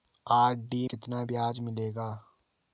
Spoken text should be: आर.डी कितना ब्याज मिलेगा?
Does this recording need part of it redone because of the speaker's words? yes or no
no